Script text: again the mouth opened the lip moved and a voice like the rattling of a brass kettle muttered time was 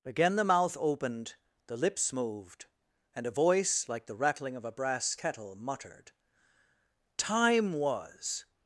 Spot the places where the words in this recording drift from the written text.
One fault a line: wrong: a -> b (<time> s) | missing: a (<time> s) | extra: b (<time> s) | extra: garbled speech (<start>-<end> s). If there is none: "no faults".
wrong: lip -> lips (1.8 s)